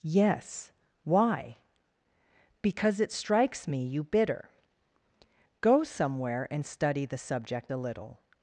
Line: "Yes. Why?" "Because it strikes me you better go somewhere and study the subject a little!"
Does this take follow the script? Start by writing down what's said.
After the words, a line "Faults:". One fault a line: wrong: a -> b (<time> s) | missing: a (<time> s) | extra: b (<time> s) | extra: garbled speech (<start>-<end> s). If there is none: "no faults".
"Yes. Why?" "Because it strikes me you bitter go somewhere and study the subject a little!"
Faults:
wrong: better -> bitter (4.0 s)